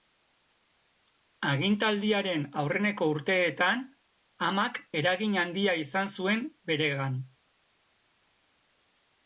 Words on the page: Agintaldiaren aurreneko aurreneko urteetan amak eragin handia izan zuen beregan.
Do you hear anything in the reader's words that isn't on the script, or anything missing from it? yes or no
yes